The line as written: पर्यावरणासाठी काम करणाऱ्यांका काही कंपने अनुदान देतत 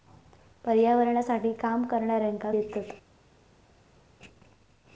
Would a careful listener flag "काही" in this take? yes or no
yes